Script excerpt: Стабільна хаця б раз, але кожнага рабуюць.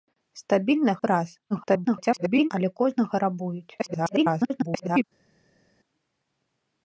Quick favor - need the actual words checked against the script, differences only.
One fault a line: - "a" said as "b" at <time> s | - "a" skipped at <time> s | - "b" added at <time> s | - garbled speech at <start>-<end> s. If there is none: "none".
- "хаця" skipped at 0.9 s
- garbled speech at 1.5-2.5 s
- garbled speech at 3.8-5.0 s